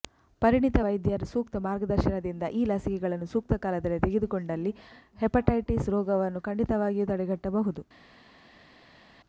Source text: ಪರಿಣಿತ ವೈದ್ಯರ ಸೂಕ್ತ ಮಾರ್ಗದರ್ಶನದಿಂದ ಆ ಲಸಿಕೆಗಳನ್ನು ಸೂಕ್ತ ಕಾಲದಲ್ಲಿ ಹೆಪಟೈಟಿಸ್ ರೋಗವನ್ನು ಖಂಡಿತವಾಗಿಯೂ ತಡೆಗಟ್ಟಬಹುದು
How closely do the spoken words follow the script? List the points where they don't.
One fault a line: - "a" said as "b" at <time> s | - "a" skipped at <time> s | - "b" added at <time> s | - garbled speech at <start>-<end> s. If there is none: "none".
- "ಆ" said as "ಈ" at 2.5 s
- "ತೆಗೆದುಕೊಂಡಲ್ಲಿ" added at 4.0 s